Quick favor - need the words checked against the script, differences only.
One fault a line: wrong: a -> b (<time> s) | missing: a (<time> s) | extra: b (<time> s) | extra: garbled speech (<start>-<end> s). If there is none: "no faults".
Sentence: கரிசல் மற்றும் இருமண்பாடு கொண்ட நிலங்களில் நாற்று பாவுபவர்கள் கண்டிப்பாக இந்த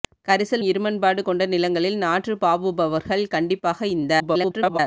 missing: மற்றும் (0.6 s)
extra: garbled speech (4.2-4.8 s)